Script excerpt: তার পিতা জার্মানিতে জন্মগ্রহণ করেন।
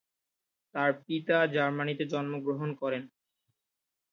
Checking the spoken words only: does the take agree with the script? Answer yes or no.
yes